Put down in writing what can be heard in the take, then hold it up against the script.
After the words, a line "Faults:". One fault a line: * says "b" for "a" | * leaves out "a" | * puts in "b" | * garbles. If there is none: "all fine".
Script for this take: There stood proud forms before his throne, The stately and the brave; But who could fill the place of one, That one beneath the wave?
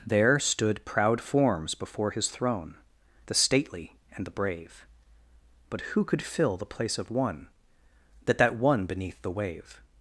There stood proud forms before his throne, The stately and the brave; But who could fill the place of one, That That one beneath the wave?
Faults:
* puts in "That"